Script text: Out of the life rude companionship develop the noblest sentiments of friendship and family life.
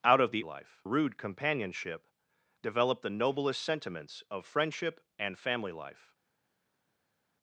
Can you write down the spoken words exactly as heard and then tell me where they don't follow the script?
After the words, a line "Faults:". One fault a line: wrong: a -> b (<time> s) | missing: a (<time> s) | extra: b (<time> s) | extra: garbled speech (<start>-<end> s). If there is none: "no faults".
Out of the life rude companionship develop the noblest sentiments of friendship and family life.
Faults:
no faults